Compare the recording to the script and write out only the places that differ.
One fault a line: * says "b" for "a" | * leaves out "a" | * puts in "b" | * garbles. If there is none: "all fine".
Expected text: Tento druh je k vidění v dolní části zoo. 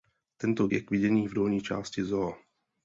* leaves out "druh"